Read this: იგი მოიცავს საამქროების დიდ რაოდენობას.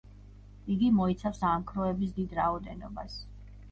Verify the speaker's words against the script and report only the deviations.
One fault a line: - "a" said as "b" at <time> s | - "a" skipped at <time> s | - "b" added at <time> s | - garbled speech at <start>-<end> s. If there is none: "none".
none